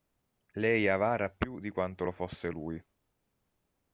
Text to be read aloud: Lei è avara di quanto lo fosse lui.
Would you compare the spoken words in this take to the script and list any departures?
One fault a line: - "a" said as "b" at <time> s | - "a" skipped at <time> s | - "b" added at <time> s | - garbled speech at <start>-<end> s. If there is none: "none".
- "più" added at 1.3 s